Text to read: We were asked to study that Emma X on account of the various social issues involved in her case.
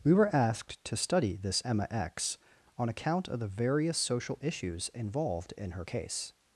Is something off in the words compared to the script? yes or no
yes